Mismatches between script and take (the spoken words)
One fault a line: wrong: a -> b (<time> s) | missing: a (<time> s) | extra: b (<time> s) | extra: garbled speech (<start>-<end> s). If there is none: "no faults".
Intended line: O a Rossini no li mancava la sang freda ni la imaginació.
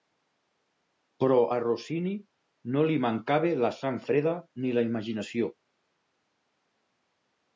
wrong: O -> Però (1.2 s)